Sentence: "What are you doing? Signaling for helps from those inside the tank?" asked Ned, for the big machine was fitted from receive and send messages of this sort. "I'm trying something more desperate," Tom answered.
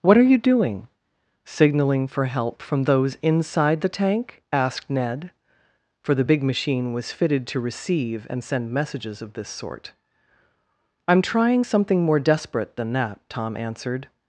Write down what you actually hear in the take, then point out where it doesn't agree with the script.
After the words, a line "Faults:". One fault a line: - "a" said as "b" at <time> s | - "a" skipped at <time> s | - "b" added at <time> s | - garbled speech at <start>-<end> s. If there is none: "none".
"What are you doing? Signaling for help from those inside the tank?" asked Ned, for the big machine was fitted to receive and send messages of this sort. "I'm trying something more desperate than that," Tom answered.
Faults:
- "helps" said as "help" at 2.2 s
- "from" said as "to" at 7.5 s
- "than that" added at 12.7 s